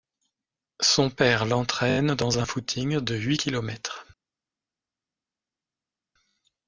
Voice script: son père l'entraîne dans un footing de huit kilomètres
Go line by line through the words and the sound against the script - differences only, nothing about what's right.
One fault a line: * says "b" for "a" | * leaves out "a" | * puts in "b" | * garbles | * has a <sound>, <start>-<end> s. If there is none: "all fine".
all fine